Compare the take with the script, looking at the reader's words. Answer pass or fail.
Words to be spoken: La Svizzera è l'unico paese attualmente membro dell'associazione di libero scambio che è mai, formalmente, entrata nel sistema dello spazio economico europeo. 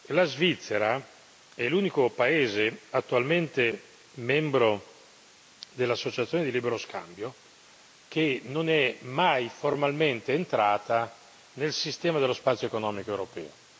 fail